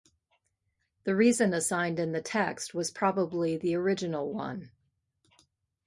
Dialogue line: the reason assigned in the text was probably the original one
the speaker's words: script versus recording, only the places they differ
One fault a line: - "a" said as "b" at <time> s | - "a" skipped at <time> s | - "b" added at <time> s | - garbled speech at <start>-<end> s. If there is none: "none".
none